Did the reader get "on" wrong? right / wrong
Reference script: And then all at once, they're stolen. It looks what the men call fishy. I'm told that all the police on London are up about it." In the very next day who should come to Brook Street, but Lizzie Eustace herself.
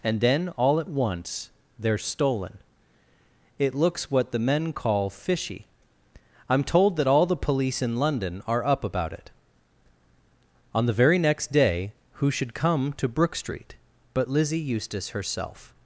wrong